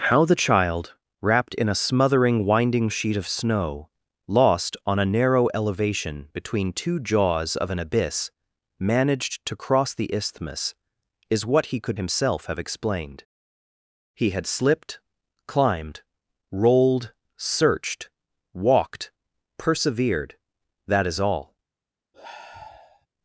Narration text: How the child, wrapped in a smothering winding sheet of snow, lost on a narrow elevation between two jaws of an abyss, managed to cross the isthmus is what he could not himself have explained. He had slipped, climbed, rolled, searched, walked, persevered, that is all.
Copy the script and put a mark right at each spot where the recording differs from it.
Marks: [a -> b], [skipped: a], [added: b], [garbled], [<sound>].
How the child, wrapped in a smothering winding sheet of snow, lost on a narrow elevation between two jaws of an abyss, managed to cross the isthmus is what he could [skipped: not] himself have explained. He had slipped, climbed, rolled, searched, walked, persevered, that is all. [sigh]